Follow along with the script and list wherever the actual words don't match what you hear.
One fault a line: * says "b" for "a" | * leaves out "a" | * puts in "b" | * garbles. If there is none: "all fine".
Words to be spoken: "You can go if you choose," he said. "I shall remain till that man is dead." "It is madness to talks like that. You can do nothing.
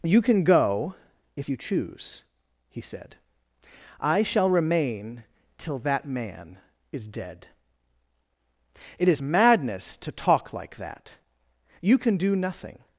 * says "talk" for "talks"